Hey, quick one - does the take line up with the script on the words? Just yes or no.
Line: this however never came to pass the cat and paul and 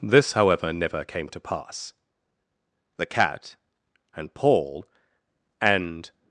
yes